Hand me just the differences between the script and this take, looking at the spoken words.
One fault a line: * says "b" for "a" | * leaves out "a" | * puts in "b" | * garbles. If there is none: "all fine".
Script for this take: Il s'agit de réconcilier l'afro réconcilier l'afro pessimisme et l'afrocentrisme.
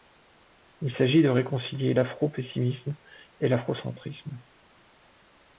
* leaves out "réconcilier l'afro"